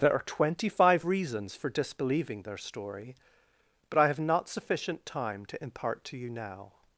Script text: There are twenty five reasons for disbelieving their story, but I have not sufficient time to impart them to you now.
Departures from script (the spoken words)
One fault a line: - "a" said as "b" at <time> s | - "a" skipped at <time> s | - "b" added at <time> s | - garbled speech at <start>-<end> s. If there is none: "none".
- "them" skipped at 6.0 s